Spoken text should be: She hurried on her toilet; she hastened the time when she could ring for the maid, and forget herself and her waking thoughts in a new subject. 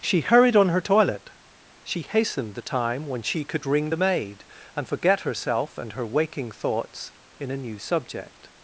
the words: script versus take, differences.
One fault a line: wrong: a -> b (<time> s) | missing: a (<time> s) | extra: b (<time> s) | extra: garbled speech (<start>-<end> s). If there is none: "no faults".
missing: for (3.9 s)